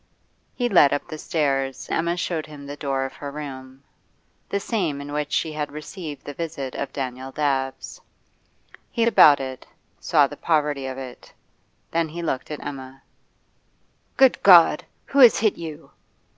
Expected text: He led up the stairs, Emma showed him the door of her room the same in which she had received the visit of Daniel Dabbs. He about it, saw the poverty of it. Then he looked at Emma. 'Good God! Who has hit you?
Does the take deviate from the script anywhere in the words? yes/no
no